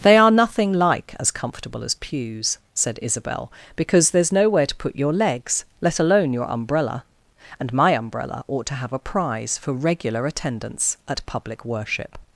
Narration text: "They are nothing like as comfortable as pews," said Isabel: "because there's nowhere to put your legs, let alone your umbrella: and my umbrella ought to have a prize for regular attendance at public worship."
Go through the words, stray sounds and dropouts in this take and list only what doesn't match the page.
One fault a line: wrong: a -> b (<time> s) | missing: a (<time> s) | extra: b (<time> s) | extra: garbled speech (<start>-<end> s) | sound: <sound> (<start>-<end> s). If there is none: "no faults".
no faults